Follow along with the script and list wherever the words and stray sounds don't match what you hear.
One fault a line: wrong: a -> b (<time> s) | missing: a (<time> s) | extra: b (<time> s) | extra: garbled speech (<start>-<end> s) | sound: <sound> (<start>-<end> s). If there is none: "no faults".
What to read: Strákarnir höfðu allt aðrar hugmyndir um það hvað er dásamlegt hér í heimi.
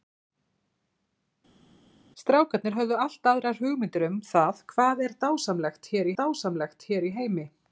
extra: dásamlegt hér (6.2 s)